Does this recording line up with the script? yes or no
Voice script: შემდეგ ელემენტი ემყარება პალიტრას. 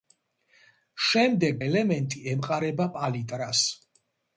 yes